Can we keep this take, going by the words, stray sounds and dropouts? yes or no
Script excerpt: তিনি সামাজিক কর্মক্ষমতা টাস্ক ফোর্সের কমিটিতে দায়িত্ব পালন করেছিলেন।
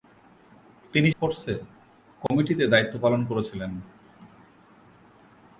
no